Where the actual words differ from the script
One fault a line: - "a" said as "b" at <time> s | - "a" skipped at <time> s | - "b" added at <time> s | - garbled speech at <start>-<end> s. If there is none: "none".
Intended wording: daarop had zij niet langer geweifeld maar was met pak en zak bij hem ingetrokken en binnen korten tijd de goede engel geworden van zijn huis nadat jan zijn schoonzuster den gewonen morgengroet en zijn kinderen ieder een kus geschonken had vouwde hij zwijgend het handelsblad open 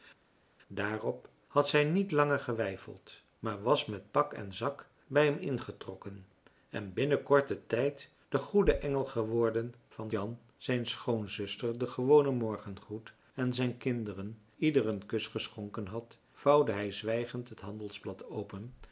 - "zijn huis nadat" skipped at 10.1 s